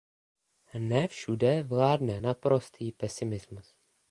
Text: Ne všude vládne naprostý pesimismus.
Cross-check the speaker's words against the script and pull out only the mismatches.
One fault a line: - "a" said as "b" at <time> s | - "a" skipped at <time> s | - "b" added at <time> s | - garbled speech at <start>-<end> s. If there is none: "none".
none